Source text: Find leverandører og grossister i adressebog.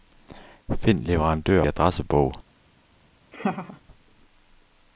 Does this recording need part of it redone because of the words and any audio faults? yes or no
yes